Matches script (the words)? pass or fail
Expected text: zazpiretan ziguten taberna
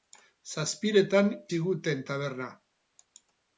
pass